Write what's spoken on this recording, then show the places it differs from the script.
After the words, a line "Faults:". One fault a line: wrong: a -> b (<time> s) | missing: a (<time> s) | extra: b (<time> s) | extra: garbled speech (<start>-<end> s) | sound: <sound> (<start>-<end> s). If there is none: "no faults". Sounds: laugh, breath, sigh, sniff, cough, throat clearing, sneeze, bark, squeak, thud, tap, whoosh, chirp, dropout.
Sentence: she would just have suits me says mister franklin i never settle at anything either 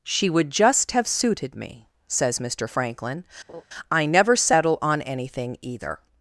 she would just have suited me says mister franklin i never settle on anything either
Faults:
wrong: suits -> suited (1.1 s)
sound: laugh (3.5-3.6 s)
wrong: at -> on (4.8 s)